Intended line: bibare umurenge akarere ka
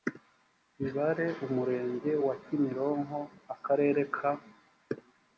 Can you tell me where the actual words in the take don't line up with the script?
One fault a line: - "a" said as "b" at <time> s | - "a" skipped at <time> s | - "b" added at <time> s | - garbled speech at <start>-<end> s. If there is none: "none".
- "wa kimironko" added at 2.2 s